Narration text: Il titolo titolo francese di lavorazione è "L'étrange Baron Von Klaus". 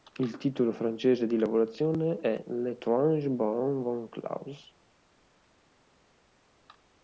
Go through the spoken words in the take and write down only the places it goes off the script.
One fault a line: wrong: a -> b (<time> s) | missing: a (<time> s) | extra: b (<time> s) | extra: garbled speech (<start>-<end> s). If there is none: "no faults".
missing: titolo (0.7 s)